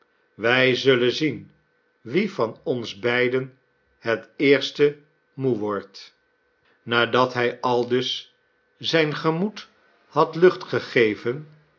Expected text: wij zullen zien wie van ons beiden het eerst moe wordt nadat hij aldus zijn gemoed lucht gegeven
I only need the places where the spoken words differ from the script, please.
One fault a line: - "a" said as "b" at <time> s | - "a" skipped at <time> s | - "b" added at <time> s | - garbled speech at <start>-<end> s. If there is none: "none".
- "had" added at 10.1 s